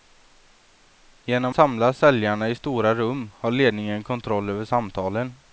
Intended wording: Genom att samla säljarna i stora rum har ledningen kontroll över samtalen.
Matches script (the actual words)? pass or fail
fail